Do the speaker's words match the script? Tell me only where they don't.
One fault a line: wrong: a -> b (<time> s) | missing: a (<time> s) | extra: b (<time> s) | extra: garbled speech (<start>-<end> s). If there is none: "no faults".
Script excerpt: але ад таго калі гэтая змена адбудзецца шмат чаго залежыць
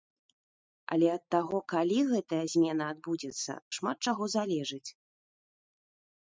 no faults